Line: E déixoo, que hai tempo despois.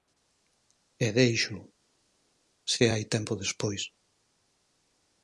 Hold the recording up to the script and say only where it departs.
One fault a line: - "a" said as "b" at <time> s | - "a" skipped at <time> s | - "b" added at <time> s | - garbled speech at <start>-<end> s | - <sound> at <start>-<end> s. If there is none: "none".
- "que" said as "se" at 2.7 s